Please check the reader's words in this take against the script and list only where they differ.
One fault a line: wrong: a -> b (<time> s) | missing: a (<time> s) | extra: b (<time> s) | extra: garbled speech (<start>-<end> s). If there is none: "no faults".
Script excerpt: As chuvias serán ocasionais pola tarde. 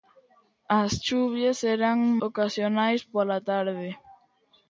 no faults